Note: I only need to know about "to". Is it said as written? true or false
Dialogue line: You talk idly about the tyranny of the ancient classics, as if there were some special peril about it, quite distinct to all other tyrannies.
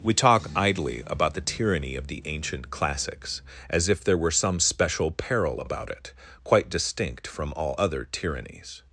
false